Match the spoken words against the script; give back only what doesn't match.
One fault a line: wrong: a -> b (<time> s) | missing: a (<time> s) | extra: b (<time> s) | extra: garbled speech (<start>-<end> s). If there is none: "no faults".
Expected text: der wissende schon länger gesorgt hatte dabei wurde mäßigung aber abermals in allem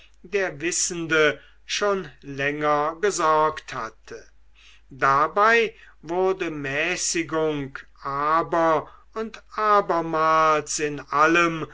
extra: und (9.1 s)